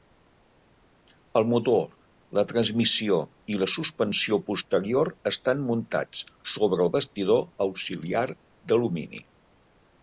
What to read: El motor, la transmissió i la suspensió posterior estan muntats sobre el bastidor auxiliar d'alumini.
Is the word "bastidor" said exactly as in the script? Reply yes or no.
yes